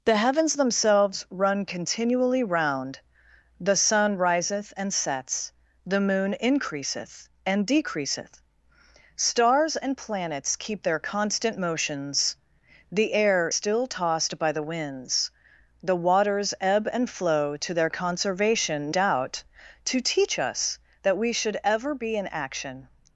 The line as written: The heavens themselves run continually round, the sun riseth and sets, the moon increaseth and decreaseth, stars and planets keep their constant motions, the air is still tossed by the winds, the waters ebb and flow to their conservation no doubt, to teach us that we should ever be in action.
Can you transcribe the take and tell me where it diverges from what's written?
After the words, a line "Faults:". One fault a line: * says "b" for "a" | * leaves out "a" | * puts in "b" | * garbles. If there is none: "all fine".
The heavens themselves run continually round, the sun riseth and sets, the moon increaseth and decreaseth, stars and planets keep their constant motions, the air still tossed by the winds, the waters ebb and flow to their conservation doubt, to teach us that we should ever be in action.
Faults:
* leaves out "is"
* leaves out "no"